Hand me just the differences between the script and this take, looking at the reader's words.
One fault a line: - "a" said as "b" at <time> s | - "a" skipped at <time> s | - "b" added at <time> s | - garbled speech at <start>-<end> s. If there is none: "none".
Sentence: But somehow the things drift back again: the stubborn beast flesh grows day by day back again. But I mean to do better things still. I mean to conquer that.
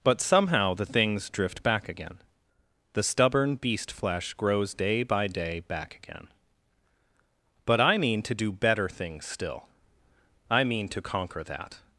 none